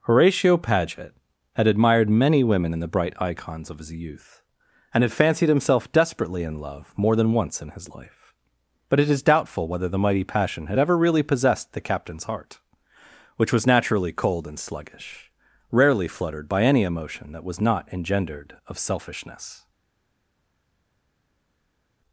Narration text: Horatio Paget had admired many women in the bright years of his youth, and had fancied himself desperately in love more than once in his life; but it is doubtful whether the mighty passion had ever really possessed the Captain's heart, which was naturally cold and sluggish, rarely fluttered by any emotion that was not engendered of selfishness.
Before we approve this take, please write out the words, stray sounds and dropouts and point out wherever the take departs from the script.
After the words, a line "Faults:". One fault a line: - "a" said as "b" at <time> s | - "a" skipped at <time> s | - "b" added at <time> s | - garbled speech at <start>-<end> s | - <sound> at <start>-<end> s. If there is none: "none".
Horatio Paget had admired many women in the bright icons of his youth, and had fancied himself desperately in love more than once in his life; but it is doubtful whether the mighty passion had ever really possessed the Captain's heart, which was naturally cold and sluggish, rarely fluttered by any emotion that was not engendered of selfishness.
Faults:
- "years" said as "icons" at 3.2 s